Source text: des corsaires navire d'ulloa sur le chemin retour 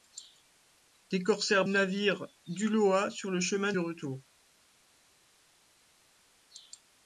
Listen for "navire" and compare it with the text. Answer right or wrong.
right